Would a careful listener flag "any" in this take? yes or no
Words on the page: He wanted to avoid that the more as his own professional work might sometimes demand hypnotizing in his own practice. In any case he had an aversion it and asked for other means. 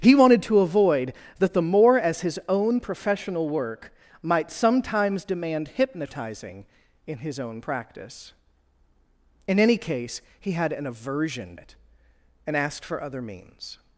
no